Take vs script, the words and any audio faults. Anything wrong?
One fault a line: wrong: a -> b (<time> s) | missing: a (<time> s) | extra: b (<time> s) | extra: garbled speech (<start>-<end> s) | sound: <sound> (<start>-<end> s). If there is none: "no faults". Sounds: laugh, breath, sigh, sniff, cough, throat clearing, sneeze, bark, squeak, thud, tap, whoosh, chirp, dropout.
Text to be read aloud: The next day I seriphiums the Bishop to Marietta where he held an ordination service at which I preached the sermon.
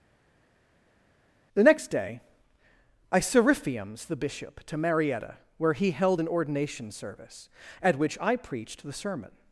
no faults